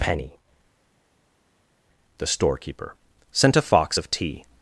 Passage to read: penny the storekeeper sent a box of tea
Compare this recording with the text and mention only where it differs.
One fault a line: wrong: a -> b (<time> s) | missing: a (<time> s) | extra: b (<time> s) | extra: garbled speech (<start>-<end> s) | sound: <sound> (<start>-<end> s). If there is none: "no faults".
wrong: box -> fox (3.6 s)